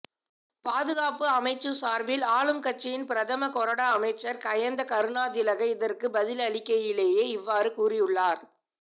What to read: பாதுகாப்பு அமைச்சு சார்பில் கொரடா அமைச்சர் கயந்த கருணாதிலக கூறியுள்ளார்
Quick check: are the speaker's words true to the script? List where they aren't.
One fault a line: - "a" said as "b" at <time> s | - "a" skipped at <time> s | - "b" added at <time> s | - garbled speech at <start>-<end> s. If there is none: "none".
- "ஆளும் கட்சியின் பிரதம" added at 2.3 s
- "இதற்கு பதிலளிக்கையிலேயே இவ்வாறு" added at 5.7 s